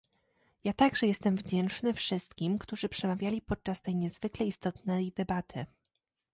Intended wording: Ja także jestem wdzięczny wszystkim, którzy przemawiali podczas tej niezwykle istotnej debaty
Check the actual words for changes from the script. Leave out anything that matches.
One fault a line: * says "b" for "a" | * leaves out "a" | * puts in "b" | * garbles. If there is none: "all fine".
all fine